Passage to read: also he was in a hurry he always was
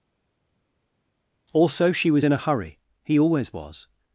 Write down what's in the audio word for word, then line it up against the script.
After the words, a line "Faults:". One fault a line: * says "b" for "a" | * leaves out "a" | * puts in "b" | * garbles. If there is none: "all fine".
also she was in a hurry he always was
Faults:
* says "she" for "he"